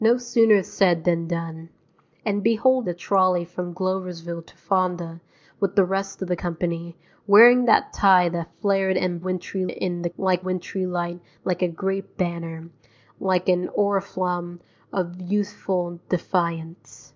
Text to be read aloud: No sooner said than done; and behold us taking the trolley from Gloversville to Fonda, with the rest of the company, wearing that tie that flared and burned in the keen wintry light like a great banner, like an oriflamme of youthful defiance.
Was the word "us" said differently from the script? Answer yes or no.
yes